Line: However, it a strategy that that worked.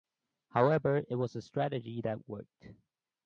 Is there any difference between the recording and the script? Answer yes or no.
yes